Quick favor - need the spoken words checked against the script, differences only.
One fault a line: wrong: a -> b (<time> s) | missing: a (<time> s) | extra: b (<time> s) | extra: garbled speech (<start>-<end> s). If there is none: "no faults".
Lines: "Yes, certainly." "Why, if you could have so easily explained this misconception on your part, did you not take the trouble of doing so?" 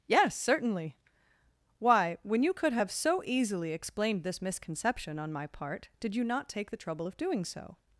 wrong: if -> when (2.2 s)
wrong: your -> my (5.3 s)